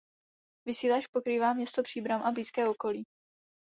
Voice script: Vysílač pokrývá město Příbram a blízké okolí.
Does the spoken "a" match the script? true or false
true